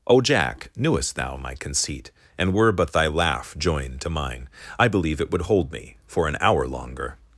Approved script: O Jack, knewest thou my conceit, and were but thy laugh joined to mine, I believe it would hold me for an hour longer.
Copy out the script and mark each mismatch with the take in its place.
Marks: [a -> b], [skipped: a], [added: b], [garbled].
O Jack, knewest thou my conceit, and were but thy laugh joined to mine, I believe it would hold me for an hour longer.